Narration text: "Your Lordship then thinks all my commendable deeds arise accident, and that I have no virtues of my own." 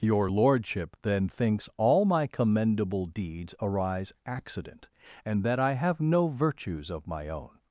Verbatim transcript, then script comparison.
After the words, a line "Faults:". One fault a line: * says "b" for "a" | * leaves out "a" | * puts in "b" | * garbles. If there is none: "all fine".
"Your Lordship then thinks all my commendable deeds arise accident, and that I have no virtues of my own."
Faults:
all fine